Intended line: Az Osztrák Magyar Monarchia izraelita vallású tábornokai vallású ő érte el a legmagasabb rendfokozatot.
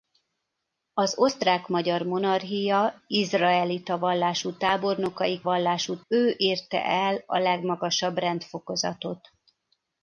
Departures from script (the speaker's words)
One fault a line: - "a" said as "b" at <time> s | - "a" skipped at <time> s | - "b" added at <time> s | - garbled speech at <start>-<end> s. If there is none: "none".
none